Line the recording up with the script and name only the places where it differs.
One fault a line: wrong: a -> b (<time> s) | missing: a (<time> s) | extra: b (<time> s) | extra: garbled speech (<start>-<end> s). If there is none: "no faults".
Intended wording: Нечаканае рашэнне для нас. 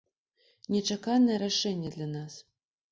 no faults